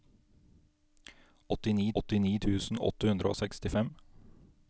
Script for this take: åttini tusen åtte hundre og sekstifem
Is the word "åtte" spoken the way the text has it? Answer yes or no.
yes